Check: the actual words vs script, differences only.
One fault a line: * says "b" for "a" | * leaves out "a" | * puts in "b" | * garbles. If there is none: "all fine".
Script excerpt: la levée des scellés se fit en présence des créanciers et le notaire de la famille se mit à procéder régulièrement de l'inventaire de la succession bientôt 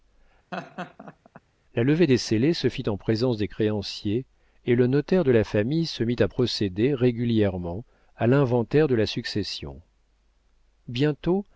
* says "à" for "de"